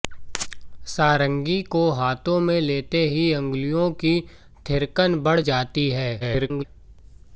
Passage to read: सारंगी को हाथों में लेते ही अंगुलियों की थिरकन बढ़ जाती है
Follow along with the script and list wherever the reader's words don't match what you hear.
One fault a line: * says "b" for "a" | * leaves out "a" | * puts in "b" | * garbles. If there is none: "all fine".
* garbles